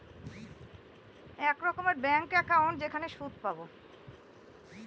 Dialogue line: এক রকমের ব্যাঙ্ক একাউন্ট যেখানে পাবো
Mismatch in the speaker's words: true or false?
true